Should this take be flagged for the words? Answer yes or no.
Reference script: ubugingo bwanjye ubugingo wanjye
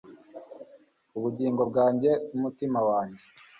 yes